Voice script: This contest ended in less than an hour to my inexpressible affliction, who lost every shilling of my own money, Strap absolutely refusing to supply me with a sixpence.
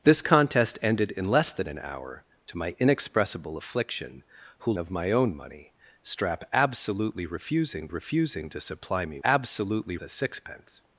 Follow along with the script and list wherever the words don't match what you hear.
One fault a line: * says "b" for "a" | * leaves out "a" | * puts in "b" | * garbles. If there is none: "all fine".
* leaves out "lost every shilling"
* puts in "refusing"
* says "absolutely" for "with"